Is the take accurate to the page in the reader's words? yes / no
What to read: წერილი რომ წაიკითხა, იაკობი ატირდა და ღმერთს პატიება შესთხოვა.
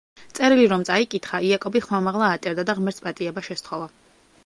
no